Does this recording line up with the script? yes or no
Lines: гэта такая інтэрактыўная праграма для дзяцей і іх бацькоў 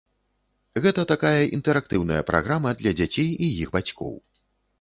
yes